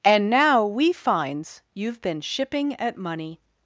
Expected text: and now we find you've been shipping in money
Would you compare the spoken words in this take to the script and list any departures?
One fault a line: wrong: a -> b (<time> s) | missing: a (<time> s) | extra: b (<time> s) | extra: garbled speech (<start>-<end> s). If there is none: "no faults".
wrong: find -> finds (0.9 s)
wrong: in -> at (2.8 s)